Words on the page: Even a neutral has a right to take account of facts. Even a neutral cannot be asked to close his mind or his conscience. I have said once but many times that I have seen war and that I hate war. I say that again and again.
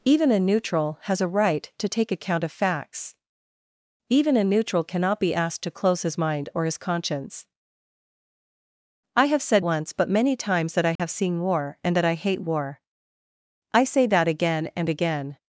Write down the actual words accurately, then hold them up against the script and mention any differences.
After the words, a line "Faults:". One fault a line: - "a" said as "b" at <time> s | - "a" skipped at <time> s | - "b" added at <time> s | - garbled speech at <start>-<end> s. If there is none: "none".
Even a neutral has a right to take account of facts. Even a neutral cannot be asked to close his mind or his conscience. I have said once but many times that I have seen war and that I hate war. I say that again and again.
Faults:
none